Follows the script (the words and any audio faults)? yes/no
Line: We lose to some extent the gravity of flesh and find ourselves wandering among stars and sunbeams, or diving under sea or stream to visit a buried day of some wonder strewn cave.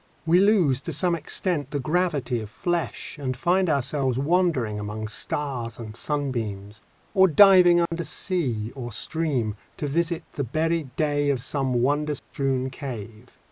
no